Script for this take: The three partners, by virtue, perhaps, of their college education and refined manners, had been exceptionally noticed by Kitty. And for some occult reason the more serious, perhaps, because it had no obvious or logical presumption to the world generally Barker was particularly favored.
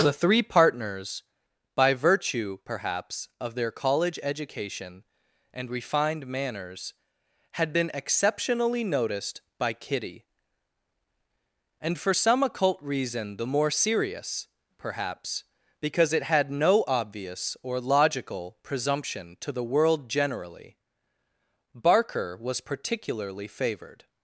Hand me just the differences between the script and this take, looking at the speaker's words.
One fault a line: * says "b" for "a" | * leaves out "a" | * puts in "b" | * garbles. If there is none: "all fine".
all fine